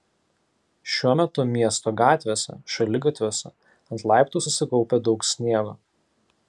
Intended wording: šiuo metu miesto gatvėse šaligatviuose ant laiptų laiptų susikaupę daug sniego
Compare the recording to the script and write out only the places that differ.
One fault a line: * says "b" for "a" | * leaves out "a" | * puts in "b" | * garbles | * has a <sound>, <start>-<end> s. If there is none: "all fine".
* leaves out "laiptų"